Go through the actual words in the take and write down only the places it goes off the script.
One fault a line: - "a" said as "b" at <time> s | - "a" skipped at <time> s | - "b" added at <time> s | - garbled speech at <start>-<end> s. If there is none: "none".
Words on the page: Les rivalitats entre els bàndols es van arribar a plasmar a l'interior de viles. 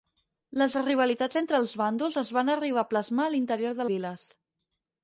none